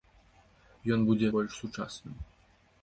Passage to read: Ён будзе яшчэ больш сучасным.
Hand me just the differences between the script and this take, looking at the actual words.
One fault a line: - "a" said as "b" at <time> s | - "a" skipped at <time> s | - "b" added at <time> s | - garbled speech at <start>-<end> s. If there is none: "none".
- "яшчэ" skipped at 1.2 s